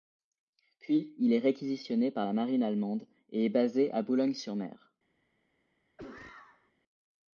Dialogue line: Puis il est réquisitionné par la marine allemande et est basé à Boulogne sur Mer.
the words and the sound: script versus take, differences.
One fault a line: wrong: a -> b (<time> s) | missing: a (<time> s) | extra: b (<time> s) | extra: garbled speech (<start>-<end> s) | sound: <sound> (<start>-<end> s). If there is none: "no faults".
sound: cough (6.0-6.7 s)